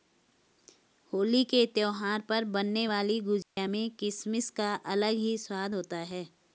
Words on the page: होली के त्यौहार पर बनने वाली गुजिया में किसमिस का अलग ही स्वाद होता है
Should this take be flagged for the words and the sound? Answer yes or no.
yes